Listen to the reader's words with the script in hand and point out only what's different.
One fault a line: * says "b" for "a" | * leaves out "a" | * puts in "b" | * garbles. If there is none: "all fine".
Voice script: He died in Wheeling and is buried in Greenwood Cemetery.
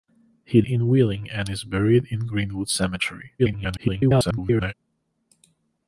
* leaves out "died"
* garbles